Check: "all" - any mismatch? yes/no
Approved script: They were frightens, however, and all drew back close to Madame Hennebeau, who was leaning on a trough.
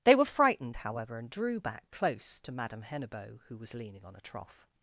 yes